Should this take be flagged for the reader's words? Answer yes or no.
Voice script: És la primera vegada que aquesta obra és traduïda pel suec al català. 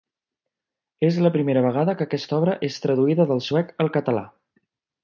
yes